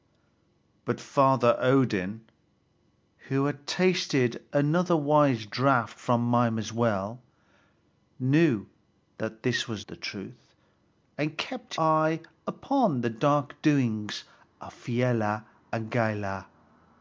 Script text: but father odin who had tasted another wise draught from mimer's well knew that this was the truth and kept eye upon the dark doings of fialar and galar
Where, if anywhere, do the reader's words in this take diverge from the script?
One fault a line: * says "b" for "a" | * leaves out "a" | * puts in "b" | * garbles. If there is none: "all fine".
all fine